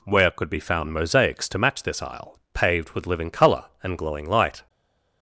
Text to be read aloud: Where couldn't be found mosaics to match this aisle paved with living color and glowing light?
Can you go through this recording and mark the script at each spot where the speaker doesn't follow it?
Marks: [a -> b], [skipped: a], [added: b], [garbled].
Where [couldn't -> could] be found mosaics to match this aisle paved with living color and glowing light?